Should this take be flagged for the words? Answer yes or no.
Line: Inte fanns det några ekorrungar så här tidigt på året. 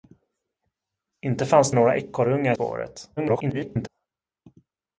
yes